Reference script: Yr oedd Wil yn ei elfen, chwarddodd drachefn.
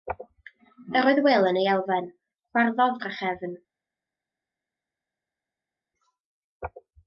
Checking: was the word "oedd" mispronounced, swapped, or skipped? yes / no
no